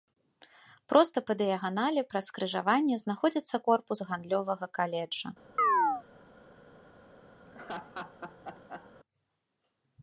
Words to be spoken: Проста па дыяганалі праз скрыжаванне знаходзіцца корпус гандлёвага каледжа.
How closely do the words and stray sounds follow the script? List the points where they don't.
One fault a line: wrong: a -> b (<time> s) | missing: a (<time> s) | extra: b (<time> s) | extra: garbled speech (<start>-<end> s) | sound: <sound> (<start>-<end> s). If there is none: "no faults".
sound: chirp (5.6-6.0 s)
sound: laugh (7.5-8.9 s)